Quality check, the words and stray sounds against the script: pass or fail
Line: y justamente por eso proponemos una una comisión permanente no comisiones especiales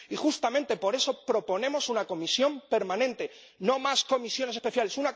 fail